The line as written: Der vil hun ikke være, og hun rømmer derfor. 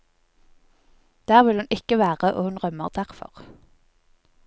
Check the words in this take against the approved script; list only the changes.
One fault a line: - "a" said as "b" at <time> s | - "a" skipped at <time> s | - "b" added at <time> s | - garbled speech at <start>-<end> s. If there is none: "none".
none